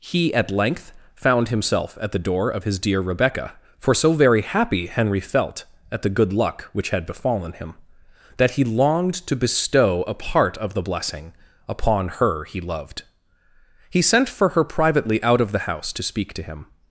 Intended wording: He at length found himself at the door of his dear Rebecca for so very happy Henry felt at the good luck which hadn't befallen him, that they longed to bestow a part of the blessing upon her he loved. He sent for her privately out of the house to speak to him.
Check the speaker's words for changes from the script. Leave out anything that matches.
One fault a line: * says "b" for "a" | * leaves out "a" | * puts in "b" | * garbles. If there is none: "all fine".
* says "had" for "hadn't"
* says "he" for "they"